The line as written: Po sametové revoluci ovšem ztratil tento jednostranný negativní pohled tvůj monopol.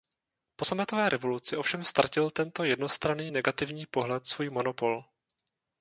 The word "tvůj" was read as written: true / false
false